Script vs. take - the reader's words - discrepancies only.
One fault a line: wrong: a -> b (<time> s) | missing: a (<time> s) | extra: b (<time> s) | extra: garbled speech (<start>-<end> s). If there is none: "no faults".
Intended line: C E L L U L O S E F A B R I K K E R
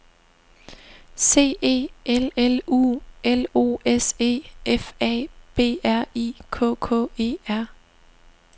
no faults